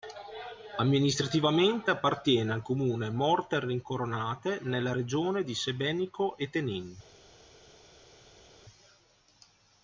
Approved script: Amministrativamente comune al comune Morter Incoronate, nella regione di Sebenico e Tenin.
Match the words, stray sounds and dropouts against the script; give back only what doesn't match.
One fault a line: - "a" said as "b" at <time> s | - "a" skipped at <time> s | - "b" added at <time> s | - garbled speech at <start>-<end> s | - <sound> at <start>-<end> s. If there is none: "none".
- "comune" said as "appartiene" at 1.9 s